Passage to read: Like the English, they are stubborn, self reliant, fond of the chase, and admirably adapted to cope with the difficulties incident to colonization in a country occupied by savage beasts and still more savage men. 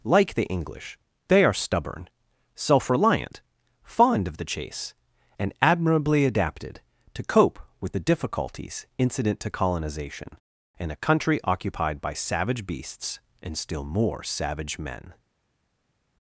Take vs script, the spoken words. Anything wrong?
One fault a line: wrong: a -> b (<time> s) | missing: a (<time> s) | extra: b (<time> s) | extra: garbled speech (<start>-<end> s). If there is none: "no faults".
no faults